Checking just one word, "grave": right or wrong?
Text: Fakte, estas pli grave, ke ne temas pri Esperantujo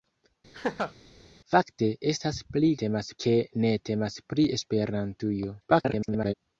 wrong